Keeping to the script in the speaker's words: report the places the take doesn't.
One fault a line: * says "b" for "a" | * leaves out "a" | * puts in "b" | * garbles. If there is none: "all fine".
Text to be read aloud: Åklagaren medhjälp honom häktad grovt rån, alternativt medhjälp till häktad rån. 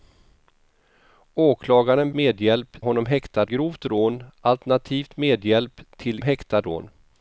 all fine